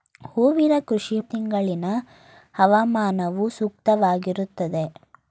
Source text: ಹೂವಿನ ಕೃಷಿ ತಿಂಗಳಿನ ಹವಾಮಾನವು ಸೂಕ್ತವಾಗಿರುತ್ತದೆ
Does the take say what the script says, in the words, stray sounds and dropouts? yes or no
yes